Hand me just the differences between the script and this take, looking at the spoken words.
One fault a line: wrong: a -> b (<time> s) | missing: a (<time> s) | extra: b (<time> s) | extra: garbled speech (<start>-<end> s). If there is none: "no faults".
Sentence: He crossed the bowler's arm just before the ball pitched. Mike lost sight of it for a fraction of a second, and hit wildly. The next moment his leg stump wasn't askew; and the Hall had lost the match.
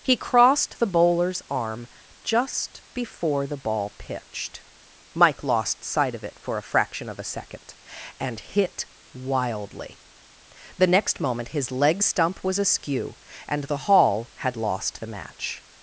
wrong: wasn't -> was (12.4 s)